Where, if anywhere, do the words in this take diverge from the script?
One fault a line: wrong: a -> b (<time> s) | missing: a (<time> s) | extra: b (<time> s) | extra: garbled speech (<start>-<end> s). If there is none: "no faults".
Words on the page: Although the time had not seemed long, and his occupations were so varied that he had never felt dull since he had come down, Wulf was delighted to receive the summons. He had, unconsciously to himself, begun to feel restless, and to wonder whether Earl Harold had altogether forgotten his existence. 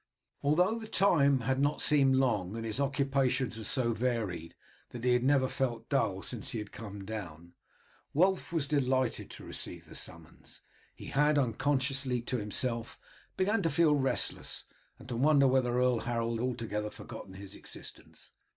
missing: had (16.4 s)